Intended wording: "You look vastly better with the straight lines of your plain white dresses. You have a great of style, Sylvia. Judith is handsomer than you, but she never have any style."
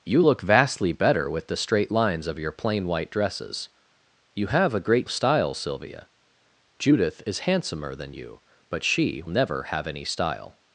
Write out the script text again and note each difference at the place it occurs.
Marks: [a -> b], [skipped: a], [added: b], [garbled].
"You look vastly better with the straight lines of your plain white dresses. You have a great of style, Sylvia. Judith is handsomer than you, but she never have any style."